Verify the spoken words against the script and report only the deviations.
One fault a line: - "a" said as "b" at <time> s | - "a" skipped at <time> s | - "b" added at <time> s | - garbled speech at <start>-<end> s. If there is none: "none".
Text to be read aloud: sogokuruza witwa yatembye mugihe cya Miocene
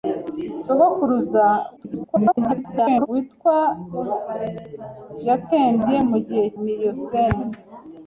- garbled speech at 1.8-3.1 s
- "cya" skipped at 6.5 s